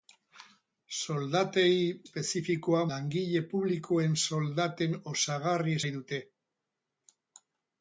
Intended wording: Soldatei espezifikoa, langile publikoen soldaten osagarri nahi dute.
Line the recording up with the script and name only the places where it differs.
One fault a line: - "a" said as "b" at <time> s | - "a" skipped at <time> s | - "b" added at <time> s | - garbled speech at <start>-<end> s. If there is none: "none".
none